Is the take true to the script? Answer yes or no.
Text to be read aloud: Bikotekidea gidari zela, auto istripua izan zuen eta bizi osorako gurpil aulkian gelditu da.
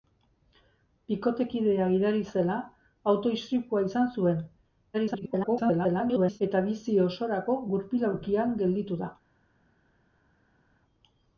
no